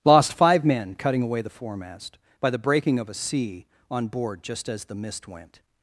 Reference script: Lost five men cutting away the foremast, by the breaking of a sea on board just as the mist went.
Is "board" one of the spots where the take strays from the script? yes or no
no